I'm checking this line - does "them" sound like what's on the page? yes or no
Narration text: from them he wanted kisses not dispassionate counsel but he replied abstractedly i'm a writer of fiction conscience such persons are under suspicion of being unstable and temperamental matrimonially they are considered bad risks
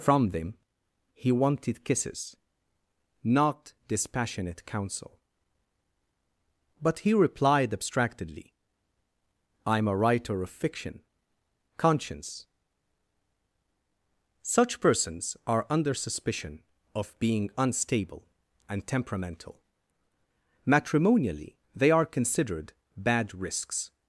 yes